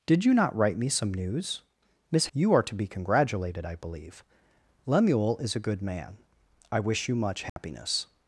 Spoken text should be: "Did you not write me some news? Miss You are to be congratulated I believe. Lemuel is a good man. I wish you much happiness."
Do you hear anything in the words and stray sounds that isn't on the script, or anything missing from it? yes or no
yes